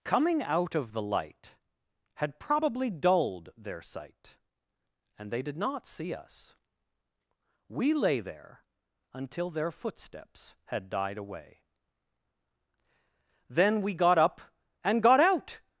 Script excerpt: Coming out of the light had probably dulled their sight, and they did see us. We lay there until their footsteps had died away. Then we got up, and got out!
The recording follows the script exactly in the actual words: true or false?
false